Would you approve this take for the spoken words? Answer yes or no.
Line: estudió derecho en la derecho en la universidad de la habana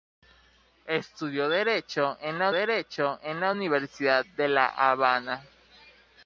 yes